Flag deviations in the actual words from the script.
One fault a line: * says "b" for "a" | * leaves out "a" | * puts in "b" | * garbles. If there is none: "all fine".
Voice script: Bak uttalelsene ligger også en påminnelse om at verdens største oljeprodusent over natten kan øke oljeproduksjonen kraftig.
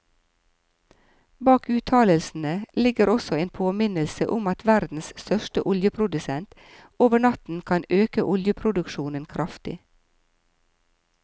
all fine